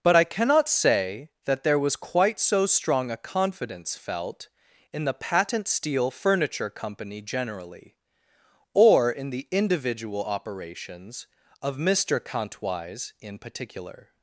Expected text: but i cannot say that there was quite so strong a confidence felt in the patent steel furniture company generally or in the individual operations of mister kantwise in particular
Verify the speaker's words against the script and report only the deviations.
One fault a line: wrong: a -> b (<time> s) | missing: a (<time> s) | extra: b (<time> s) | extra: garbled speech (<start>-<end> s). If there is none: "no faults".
no faults